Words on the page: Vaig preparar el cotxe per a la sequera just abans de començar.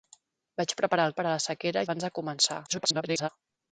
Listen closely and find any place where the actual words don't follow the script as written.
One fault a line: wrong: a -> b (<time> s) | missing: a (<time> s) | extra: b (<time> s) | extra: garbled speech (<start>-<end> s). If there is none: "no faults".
missing: cotxe (1.1 s)
missing: just (1.9 s)
extra: garbled speech (2.7-3.3 s)